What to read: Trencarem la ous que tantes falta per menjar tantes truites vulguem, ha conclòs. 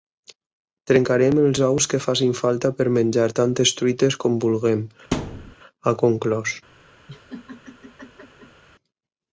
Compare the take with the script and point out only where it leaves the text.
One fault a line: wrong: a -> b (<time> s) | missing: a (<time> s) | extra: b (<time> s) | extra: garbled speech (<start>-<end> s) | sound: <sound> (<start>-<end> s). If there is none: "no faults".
wrong: la -> els (1.4 s)
wrong: tantes -> facin (2.1 s)
extra: com (4.2 s)
sound: thud (5.1-5.6 s)
sound: laugh (7.1-8.6 s)